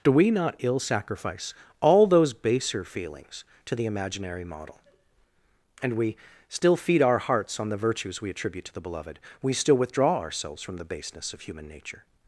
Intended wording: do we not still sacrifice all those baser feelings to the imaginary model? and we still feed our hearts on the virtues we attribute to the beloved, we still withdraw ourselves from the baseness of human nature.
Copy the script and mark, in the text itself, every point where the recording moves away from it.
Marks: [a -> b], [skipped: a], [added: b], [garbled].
do we not [still -> ill] sacrifice all those baser feelings to the imaginary model? and we still feed our hearts on the virtues we attribute to the beloved, we still withdraw ourselves from the baseness of human nature.